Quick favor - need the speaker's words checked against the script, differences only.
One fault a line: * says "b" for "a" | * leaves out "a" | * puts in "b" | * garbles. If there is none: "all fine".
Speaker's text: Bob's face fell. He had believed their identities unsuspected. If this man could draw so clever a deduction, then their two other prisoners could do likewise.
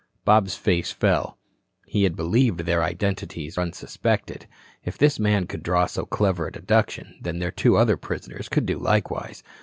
all fine